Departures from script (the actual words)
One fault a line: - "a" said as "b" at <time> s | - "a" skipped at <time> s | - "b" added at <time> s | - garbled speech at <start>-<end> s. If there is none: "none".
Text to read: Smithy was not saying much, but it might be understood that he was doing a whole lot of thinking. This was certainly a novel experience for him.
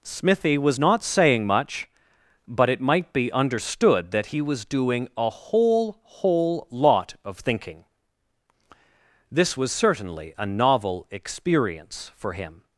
- "whole" added at 6.0 s